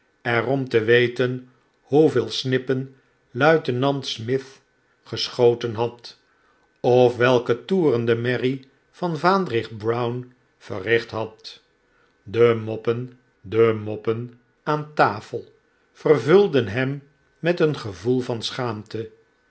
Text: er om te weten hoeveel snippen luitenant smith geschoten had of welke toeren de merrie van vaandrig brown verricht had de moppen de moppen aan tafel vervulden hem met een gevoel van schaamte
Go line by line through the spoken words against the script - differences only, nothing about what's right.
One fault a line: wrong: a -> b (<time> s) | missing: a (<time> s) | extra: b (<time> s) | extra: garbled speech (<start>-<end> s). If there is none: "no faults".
no faults